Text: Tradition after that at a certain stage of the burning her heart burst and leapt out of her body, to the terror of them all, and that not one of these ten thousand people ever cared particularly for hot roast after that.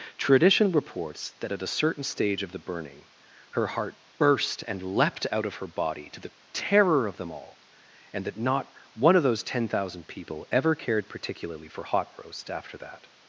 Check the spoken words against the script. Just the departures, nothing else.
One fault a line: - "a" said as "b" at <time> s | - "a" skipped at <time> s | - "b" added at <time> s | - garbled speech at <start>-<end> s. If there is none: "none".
- "after" said as "reports" at 0.7 s
- "these" said as "those" at 9.2 s